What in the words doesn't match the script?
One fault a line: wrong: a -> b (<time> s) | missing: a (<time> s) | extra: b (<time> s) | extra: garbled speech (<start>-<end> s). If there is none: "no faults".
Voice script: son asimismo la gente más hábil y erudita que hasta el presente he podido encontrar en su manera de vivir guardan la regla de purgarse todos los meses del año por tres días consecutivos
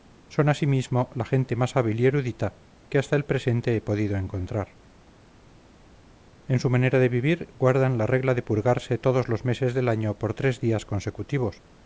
no faults